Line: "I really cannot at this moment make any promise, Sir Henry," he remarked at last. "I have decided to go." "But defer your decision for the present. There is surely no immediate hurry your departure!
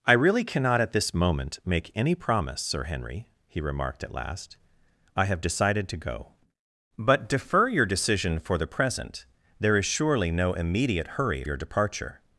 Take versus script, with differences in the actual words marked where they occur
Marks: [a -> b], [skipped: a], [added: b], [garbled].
"I really cannot at this moment make any promise, Sir Henry," he remarked at last. "I have decided to go." "But defer your decision for the present. There is surely no immediate hurry your departure!